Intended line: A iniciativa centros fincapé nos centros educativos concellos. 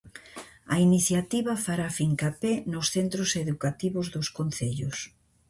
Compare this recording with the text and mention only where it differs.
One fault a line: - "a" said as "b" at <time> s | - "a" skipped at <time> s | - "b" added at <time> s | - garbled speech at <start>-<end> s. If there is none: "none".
- "centros" said as "fará" at 1.6 s
- "dos" added at 4.2 s